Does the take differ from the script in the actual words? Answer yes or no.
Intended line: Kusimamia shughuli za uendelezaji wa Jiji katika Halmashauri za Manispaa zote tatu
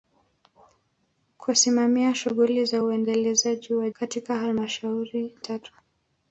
yes